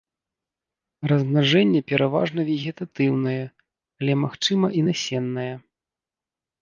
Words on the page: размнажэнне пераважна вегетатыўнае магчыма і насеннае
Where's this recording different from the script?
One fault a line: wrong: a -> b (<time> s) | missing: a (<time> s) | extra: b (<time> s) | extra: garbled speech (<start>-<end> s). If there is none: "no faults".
extra: але (4.0 s)